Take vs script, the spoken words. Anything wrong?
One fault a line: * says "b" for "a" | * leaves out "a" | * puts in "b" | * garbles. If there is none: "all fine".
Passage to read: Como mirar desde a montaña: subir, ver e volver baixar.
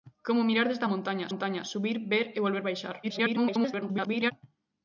* puts in "montaña"
* garbles